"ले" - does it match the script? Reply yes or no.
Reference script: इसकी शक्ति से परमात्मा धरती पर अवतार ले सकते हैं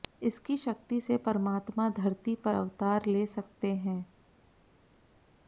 yes